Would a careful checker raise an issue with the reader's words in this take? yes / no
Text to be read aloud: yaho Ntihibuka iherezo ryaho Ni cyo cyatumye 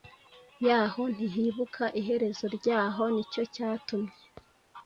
no